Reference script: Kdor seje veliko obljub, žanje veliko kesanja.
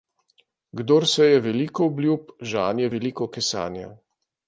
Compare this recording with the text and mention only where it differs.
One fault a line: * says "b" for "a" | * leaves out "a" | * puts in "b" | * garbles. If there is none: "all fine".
all fine